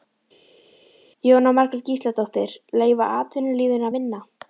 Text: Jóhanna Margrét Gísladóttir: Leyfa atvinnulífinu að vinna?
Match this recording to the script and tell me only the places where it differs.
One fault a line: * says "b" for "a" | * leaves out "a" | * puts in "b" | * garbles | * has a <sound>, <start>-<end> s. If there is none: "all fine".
all fine